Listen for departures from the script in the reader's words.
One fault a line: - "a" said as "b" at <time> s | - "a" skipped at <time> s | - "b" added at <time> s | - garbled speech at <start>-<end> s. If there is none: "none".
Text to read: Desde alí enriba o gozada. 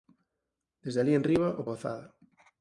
none